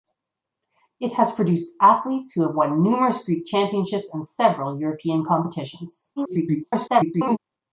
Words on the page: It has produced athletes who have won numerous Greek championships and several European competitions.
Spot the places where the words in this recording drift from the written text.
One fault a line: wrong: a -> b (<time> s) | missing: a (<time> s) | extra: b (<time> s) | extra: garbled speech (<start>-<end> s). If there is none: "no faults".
extra: garbled speech (6.2-7.4 s)